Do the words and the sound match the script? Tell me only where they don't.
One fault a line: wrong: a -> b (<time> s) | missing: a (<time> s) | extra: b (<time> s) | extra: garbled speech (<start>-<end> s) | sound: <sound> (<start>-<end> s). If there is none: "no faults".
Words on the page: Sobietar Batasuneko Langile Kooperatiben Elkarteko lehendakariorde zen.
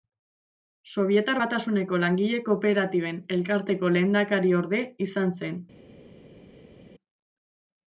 extra: izan (5.1 s)